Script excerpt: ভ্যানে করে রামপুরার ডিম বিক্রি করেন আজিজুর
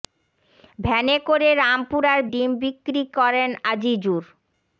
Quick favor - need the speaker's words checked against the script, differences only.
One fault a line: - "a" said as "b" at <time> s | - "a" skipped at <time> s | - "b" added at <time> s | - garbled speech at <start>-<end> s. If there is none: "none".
none